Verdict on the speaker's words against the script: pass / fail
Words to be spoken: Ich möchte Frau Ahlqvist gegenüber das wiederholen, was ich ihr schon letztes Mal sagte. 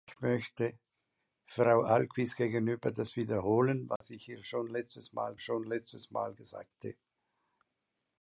fail